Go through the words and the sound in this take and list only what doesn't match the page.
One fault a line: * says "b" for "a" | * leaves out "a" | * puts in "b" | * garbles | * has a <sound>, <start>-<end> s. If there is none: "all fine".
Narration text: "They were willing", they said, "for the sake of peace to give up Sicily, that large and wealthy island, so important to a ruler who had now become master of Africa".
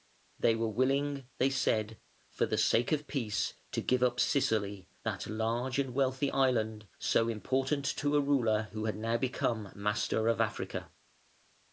all fine